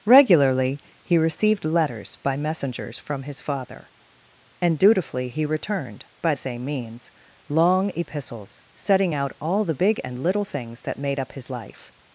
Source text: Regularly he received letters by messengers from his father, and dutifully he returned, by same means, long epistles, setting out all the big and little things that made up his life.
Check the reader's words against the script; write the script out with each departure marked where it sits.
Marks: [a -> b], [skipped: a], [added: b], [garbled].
Regularly he received letters by messengers from his father, and dutifully he returned, by same means, long epistles, setting out all the big and little things that made up his life.